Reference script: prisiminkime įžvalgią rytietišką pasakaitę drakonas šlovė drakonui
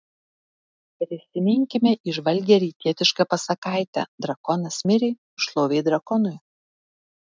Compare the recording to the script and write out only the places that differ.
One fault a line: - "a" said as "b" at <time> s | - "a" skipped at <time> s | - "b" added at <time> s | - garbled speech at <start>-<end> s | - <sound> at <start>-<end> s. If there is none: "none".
- "mirė" added at 4.9 s